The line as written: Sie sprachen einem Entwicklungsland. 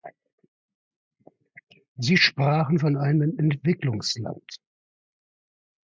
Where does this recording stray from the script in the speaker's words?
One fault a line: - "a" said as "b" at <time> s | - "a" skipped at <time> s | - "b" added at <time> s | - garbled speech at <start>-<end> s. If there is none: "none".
- "von" added at 2.8 s